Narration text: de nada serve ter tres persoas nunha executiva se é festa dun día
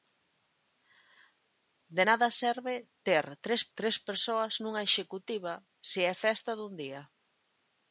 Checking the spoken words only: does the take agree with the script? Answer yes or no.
no